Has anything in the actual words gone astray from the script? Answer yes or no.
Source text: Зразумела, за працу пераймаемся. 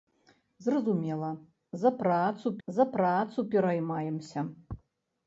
yes